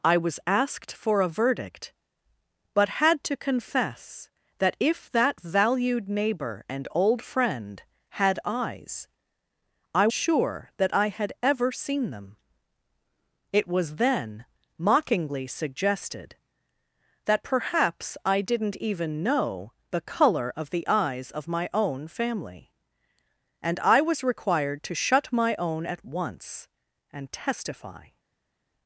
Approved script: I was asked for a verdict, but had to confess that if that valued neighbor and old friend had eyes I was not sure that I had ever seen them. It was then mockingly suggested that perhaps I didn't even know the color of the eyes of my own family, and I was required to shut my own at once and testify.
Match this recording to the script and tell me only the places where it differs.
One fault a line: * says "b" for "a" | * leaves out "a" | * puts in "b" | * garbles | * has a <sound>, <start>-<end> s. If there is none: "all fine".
* leaves out "was not"